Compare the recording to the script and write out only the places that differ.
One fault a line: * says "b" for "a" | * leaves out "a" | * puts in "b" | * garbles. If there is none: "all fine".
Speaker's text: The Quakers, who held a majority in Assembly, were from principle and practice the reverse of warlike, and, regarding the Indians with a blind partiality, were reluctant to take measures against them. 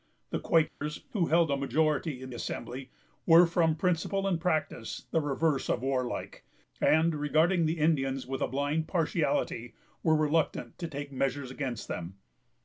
all fine